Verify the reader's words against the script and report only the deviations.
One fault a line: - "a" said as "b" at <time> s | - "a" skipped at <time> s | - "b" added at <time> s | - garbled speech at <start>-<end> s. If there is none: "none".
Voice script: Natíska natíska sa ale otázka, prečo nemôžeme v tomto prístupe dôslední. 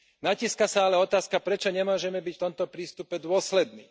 - "natíska" skipped at 0.7 s
- "byť" added at 2.2 s